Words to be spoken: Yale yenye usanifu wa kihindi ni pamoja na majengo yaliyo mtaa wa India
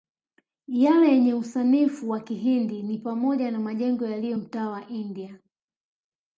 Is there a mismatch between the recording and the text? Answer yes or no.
no